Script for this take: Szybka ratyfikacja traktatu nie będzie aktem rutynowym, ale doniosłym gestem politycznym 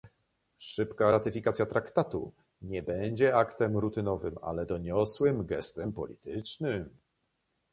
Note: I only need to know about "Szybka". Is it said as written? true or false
true